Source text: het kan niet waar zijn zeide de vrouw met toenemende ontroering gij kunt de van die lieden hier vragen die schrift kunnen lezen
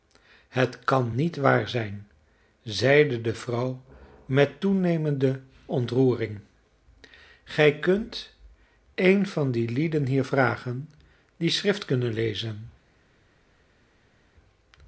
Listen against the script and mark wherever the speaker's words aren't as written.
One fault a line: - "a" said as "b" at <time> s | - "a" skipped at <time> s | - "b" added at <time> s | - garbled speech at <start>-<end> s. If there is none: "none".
- "de" said as "een" at 8.9 s